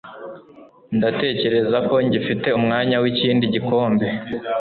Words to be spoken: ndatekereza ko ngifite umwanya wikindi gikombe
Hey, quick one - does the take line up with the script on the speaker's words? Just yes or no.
yes